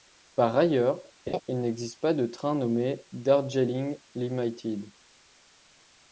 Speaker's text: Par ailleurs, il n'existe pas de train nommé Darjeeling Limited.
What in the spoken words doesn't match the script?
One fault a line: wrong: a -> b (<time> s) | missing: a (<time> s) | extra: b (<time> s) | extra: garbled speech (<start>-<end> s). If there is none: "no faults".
no faults